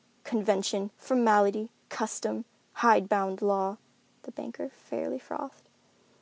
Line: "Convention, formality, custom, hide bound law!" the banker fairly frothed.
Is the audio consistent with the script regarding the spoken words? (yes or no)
yes